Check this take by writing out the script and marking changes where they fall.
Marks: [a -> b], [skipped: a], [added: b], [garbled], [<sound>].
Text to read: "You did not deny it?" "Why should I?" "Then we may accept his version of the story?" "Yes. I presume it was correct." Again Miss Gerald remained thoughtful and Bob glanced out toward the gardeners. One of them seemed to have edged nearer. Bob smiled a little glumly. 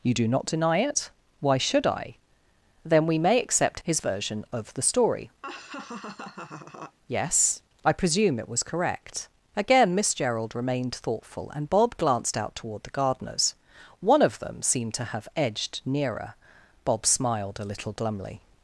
"You [did -> do] not deny it?" "Why should I?" "Then we may accept his version of the story?" [laugh] "Yes. I presume it was correct." Again Miss Gerald remained thoughtful and Bob glanced out toward the gardeners. One of them seemed to have edged nearer. Bob smiled a little glumly.